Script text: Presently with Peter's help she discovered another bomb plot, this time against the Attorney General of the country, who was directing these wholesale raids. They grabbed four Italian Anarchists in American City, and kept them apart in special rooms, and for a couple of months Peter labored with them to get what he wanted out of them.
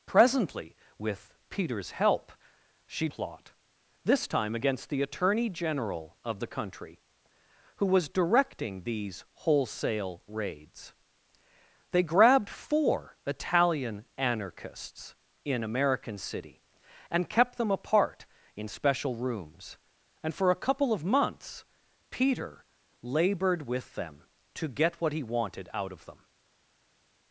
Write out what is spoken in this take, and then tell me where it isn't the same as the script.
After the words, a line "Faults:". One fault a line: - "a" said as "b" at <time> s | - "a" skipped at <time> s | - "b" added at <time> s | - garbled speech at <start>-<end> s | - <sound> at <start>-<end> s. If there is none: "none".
Presently with Peter's help she plot, this time against the Attorney General of the country, who was directing these wholesale raids. They grabbed four Italian Anarchists in American City, and kept them apart in special rooms, and for a couple of months Peter labored with them to get what he wanted out of them.
Faults:
- "discovered another bomb" skipped at 3.1 s